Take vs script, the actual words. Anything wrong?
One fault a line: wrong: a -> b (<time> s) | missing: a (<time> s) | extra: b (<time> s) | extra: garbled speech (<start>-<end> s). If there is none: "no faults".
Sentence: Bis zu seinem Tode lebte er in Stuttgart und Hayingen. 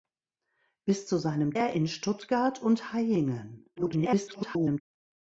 missing: Tode lebte (1.6 s)
extra: garbled speech (3.8-4.8 s)